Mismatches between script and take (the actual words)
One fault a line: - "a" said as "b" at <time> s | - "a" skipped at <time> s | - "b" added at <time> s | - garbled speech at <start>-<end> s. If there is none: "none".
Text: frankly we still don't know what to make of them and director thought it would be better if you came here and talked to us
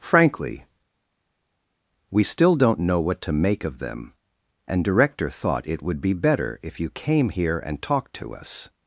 none